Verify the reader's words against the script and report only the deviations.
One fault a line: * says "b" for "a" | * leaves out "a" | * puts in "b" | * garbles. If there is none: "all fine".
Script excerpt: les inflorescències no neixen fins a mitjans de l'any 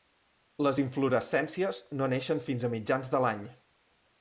all fine